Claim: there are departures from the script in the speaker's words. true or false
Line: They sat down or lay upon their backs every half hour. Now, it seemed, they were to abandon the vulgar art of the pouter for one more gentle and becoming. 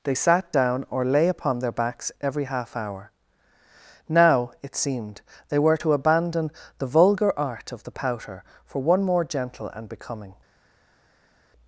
false